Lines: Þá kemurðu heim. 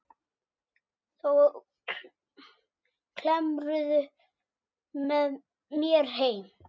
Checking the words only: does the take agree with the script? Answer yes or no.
no